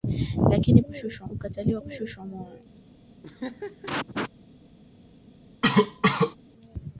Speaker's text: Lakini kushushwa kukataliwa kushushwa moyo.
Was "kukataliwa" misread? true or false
false